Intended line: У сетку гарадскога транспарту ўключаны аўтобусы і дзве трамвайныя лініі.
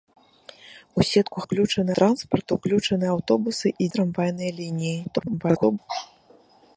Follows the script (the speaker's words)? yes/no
no